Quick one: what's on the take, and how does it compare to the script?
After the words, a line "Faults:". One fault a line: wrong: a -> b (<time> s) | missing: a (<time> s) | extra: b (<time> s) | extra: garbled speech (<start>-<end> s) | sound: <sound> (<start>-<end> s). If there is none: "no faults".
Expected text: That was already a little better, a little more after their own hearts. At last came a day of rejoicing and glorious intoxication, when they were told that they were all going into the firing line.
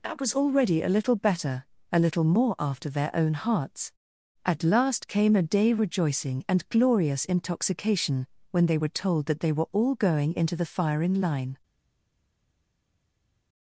That was already a little better, a little more after their own hearts. At last came a day rejoicing and glorious intoxication, when they were told that they were all going into the firing line.
Faults:
missing: of (5.7 s)